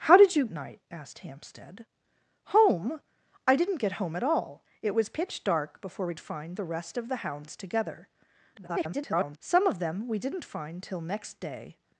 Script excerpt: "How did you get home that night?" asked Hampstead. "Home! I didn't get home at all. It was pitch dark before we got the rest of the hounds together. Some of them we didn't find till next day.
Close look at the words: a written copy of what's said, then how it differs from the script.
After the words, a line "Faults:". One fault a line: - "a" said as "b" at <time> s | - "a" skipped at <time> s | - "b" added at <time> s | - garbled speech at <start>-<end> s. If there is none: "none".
"How did you night?" asked Hampstead. "Home! I didn't get home at all. It was pitch dark before we find the rest of the hounds together. [garbled] Some of them we didn't find till next day.
Faults:
- "get home that" skipped at 0.5 s
- "got" said as "find" at 6.2 s
- garbled speech at 8.5-9.4 s